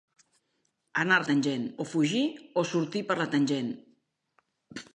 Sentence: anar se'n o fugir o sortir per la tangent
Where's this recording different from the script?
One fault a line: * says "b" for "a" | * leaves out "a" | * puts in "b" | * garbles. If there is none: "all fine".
* says "tangent" for "se'n"